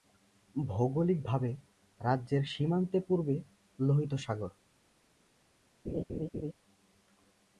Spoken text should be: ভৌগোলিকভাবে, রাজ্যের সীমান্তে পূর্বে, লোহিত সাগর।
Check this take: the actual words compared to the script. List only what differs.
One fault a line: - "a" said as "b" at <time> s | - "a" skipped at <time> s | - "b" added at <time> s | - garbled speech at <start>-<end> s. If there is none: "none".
none